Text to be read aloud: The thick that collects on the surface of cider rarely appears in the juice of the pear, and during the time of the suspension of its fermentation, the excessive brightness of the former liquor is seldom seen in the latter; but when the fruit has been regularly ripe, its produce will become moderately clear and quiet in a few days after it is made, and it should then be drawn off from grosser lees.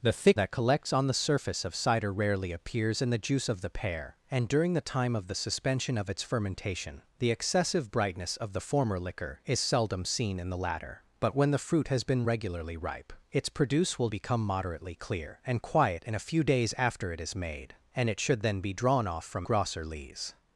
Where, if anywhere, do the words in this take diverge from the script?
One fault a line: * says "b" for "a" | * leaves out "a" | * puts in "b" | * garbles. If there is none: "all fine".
all fine